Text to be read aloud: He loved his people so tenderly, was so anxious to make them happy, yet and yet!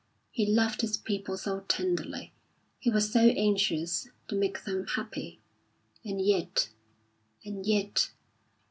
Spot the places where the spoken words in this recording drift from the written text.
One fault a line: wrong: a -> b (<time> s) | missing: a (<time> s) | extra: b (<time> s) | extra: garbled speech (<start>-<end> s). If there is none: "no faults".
extra: he (2.8 s)
extra: and (6.0 s)